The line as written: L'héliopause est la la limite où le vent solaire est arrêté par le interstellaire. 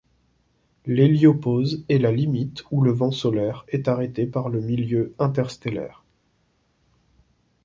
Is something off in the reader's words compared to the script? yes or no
yes